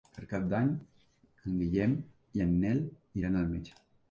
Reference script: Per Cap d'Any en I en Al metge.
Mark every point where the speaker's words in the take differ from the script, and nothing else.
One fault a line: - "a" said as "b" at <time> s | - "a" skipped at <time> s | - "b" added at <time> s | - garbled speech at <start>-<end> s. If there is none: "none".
- "Guillem" added at 1.6 s
- "Nel iran" added at 2.6 s